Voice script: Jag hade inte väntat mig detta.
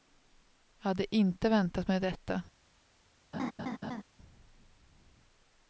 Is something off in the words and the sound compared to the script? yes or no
yes